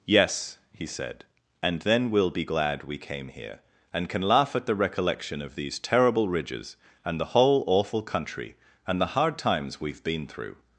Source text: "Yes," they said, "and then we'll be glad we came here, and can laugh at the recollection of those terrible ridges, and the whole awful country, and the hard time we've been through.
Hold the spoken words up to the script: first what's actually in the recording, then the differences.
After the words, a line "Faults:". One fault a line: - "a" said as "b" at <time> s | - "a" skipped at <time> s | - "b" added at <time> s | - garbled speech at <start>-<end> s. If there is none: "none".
"Yes," he said, "and then we'll be glad we came here, and can laugh at the recollection of these terrible ridges, and the whole awful country, and the hard times we've been through.
Faults:
- "they" said as "he" at 0.7 s
- "those" said as "these" at 5.6 s
- "time" said as "times" at 9.4 s